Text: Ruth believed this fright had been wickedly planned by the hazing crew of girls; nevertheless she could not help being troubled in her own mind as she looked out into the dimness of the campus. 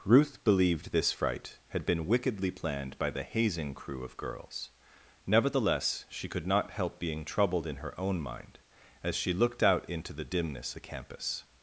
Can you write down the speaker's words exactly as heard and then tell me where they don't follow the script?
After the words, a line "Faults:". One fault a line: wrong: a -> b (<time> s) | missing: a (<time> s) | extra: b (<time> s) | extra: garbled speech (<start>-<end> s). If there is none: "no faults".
Ruth believed this fright had been wickedly planned by the hazing crew of girls; nevertheless she could not help being troubled in her own mind as she looked out into the dimness the campus.
Faults:
missing: of (10.7 s)